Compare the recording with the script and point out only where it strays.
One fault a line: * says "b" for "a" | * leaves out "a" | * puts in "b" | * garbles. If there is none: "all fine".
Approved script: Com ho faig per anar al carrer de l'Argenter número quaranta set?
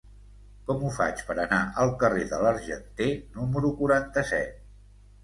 all fine